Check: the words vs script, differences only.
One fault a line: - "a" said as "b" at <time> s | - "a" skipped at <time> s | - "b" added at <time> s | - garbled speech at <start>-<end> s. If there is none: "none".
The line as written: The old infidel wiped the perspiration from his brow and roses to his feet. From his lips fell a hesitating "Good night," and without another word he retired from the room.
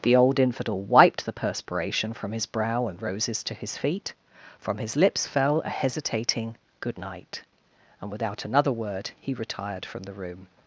none